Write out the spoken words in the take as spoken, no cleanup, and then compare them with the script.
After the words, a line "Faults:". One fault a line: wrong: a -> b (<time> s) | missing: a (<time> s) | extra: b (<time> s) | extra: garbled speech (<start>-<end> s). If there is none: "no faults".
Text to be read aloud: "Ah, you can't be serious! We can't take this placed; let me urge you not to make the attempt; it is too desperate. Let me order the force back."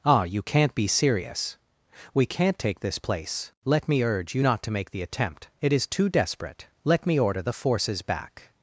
"Ah, you can't be serious! We can't take this place; let me urge you not to make the attempt; it is too desperate. Let me order the forces back."
Faults:
wrong: placed -> place (3.0 s)
wrong: force -> forces (7.5 s)